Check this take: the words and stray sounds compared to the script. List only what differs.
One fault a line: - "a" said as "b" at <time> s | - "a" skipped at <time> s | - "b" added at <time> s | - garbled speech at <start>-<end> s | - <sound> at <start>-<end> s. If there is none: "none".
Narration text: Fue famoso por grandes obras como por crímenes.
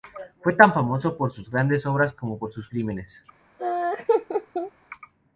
- "tan" added at 0.5 s
- "sus" added at 1.3 s
- "sus" added at 2.5 s
- laugh at 3.6-4.7 s